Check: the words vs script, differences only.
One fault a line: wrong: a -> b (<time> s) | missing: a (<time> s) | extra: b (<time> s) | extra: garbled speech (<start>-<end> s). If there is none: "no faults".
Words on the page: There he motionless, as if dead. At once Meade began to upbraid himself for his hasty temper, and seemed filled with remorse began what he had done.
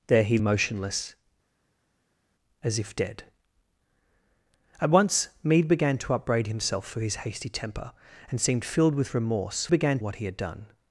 no faults